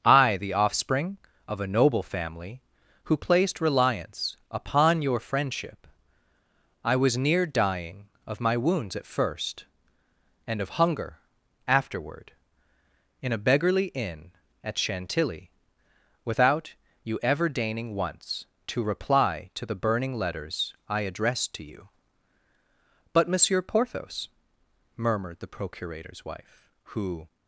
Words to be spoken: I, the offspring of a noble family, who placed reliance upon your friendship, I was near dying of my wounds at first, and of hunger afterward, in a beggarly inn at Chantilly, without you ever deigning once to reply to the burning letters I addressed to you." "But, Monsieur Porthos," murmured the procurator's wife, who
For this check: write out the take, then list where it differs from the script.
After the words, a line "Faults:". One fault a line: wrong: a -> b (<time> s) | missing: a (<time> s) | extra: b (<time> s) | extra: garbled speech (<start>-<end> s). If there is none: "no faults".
I, the offspring of a noble family, who placed reliance upon your friendship, I was near dying of my wounds at first, and of hunger afterward, in a beggarly inn at Chantilly, without you ever deigning once to reply to the burning letters I addressed to you." "But, Monsieur Porthos," murmured the procurator's wife, who
Faults:
no faults